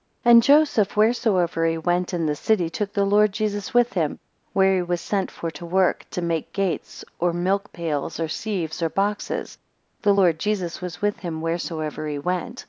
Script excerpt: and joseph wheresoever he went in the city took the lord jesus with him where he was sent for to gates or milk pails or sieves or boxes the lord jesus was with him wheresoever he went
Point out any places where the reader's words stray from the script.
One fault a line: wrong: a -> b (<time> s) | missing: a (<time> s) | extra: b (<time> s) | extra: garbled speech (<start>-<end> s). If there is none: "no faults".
extra: work to make (5.6 s)